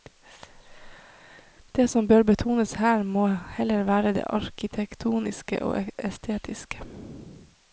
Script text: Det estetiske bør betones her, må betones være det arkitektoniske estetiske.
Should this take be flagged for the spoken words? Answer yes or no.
yes